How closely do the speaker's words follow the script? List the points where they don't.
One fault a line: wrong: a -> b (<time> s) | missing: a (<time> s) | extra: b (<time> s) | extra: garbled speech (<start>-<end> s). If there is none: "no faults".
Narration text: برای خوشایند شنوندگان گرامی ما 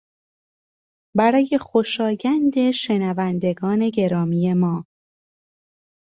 no faults